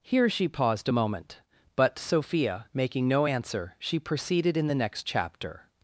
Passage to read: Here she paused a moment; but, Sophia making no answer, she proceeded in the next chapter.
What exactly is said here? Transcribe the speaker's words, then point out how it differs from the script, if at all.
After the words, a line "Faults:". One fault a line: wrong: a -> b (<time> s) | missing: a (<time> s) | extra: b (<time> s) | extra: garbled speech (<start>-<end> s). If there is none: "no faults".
Here she paused a moment; but, Sophia making no answer, she proceeded in the next chapter.
Faults:
no faults